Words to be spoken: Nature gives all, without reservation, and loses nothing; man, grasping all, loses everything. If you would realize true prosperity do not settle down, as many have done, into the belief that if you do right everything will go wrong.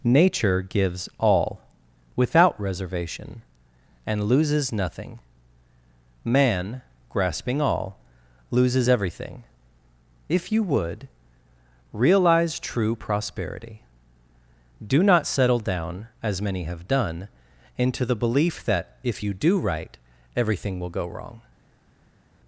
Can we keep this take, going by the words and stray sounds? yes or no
yes